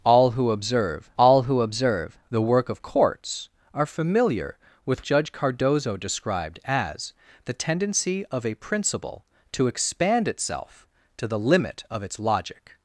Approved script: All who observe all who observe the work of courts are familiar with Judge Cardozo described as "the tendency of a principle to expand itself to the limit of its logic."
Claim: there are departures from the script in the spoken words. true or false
false